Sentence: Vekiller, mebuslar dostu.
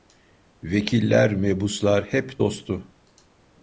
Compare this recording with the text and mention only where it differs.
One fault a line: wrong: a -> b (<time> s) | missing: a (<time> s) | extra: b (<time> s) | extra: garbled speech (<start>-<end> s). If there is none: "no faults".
extra: hep (2.0 s)